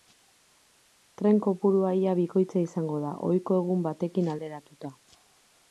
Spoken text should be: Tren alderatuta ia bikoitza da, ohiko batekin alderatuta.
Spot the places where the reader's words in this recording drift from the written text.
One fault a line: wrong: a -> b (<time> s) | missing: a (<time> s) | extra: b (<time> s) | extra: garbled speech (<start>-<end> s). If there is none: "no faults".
wrong: alderatuta -> kopurua (1.5 s)
extra: izango (2.7 s)
extra: egun (3.6 s)